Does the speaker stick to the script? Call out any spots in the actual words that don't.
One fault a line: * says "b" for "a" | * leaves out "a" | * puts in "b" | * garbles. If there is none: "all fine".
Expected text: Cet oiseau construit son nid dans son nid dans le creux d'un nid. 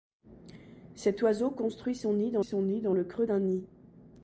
all fine